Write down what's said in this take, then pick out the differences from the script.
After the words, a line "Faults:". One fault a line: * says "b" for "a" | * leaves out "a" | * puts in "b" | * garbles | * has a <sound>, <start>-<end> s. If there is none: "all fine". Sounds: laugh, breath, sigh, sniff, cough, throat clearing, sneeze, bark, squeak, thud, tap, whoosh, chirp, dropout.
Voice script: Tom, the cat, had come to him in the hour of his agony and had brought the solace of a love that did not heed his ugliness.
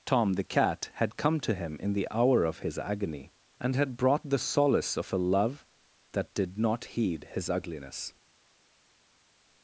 Tom, the cat, had come to him in the hour of his agony and had brought the solace of a love that did not heed his ugliness.
Faults:
all fine